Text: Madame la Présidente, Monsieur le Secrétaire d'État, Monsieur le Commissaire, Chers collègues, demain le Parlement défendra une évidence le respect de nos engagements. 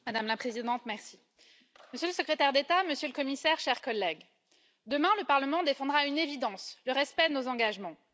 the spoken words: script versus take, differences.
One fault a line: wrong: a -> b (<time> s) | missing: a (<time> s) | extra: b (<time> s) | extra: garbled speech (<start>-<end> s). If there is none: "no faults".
no faults